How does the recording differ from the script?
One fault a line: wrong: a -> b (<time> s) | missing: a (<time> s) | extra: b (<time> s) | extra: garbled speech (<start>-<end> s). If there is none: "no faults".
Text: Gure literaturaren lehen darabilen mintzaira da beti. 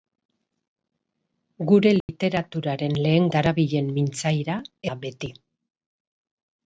no faults